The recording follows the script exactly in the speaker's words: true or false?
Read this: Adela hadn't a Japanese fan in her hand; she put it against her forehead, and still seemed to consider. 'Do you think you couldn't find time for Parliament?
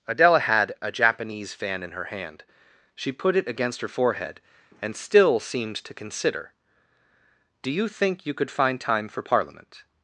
false